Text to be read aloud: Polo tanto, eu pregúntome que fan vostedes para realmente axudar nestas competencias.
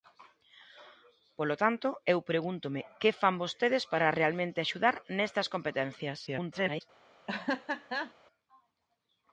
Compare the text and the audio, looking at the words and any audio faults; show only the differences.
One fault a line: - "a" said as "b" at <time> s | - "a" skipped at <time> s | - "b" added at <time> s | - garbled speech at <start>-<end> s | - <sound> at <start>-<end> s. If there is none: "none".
- garbled speech at 6.3-6.8 s
- laugh at 7.3-8.1 s